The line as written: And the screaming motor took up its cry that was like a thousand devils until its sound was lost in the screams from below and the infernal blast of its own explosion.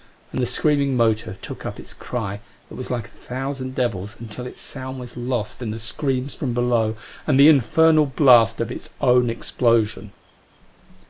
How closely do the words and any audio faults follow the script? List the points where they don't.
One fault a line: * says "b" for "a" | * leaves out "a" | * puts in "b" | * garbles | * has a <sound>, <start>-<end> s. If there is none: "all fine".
all fine